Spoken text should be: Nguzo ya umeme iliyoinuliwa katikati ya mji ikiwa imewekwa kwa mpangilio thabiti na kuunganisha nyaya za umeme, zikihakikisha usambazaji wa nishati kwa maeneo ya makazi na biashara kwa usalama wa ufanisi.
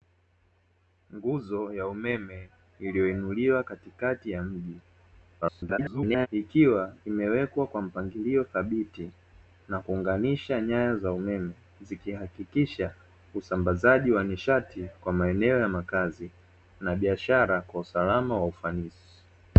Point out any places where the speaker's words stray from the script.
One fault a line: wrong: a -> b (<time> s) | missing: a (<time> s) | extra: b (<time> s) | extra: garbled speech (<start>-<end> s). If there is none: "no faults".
extra: garbled speech (5.4-6.3 s)